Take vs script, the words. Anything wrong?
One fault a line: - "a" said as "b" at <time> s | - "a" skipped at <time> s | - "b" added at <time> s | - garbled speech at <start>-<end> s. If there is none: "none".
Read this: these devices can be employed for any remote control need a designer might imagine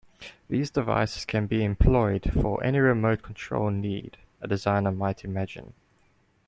none